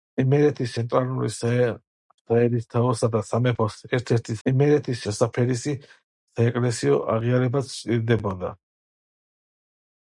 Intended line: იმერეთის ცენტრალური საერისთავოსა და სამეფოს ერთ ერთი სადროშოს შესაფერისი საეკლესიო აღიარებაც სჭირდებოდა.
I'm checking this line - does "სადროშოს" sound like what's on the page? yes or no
no